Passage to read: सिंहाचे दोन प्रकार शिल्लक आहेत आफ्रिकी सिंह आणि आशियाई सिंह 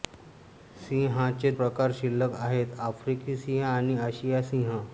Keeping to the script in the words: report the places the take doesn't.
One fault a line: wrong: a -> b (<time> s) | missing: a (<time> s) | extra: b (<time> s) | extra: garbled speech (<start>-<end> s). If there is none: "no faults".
missing: दोन (1.5 s)